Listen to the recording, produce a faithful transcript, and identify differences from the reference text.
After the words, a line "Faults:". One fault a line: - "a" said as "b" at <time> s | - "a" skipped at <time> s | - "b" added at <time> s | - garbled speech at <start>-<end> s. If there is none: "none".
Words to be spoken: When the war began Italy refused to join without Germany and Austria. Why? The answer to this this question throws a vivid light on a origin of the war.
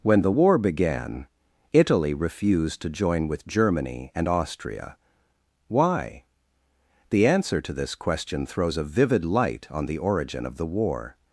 When the war began Italy refused to join with Germany and Austria. Why? The answer to this question throws a vivid light on the origin of the war.
Faults:
- "without" said as "with" at 3.3 s
- "this" skipped at 7.9 s
- "a" said as "the" at 9.8 s